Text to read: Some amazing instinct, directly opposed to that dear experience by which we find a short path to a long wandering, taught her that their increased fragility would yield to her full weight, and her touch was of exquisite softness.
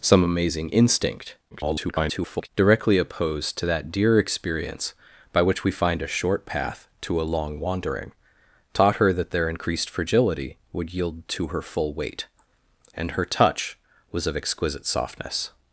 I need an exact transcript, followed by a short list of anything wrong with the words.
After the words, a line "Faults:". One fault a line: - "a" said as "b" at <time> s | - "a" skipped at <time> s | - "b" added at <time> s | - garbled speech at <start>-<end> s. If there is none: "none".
Some amazing instinct, [garbled] directly opposed to that dear experience by which we find a short path to a long wandering, taught her that their increased fragility would yield to her full weight, and her touch was of exquisite softness.
Faults:
- garbled speech at 1.5-2.5 s